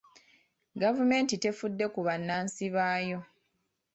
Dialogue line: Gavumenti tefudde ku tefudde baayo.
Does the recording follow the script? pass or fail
fail